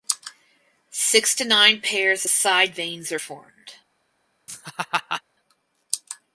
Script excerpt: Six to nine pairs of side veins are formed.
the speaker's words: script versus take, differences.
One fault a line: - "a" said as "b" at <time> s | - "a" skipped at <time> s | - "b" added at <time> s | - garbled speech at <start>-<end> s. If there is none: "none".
none